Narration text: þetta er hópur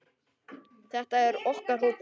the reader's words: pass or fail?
fail